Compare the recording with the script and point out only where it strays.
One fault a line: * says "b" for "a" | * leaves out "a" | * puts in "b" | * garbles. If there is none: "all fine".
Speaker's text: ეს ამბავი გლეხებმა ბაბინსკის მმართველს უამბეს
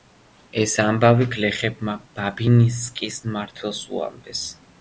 all fine